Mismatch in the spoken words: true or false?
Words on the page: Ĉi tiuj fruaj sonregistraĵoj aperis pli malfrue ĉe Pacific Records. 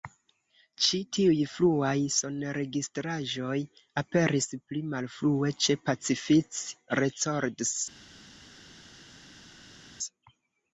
false